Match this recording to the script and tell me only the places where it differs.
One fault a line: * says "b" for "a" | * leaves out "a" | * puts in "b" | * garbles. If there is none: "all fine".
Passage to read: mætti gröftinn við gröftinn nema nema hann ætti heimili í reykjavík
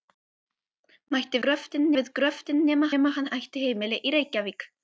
all fine